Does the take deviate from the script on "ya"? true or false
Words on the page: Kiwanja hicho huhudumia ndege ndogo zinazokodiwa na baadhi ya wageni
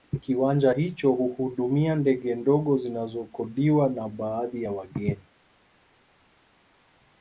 false